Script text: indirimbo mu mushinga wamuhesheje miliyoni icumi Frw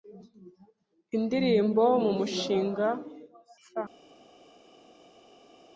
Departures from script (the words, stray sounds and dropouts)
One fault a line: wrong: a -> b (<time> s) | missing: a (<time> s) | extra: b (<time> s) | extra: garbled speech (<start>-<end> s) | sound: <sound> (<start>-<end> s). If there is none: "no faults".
missing: wamuhesheje miliyoni icumi (2.9 s)